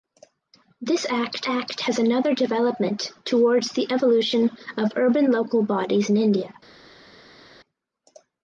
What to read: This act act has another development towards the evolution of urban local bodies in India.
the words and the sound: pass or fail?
pass